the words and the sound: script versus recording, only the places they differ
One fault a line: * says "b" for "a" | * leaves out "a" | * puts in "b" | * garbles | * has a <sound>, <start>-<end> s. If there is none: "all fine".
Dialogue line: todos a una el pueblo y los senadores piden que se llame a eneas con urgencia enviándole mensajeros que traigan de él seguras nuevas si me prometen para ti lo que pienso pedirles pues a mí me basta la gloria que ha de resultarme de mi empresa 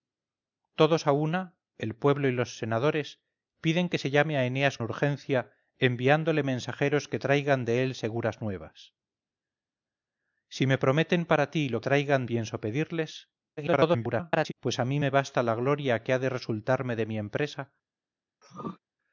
* leaves out "con"
* says "traigan" for "que"
* garbles
* has a throat clearing, 18.4-18.8 s